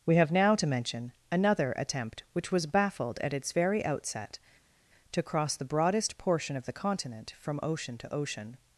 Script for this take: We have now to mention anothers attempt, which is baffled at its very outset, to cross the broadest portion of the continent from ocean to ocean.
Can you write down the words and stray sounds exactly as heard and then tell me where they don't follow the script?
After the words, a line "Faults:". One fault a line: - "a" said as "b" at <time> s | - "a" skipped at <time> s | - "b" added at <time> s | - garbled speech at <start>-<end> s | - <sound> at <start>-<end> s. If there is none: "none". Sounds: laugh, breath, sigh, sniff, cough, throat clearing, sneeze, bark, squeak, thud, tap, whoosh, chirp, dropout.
We have now to mention another attempt, which was baffled at its very outset, to cross the broadest portion of the continent from ocean to ocean.
Faults:
- "anothers" said as "another" at 1.3 s
- "is" said as "was" at 2.5 s